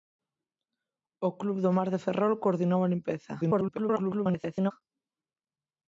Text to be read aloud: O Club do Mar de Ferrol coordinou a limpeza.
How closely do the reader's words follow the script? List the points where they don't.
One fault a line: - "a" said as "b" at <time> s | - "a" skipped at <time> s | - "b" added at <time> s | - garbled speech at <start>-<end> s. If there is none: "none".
- garbled speech at 3.4-4.7 s